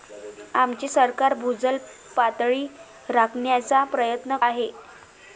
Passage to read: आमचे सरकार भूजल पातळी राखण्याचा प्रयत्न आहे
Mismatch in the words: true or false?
false